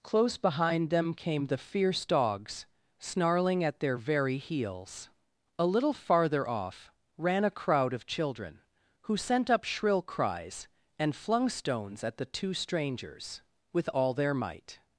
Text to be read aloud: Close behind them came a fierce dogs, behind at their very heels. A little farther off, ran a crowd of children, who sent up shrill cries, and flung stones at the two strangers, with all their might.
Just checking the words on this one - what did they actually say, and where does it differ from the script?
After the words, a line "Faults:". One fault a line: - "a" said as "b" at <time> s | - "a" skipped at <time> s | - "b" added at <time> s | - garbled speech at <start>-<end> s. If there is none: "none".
Close behind them came the fierce dogs, snarling at their very heels. A little farther off, ran a crowd of children, who sent up shrill cries, and flung stones at the two strangers, with all their might.
Faults:
- "a" said as "the" at 1.4 s
- "behind" said as "snarling" at 3.0 s